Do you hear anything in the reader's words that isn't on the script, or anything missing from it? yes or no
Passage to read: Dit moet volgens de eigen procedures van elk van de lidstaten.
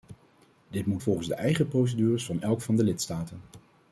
no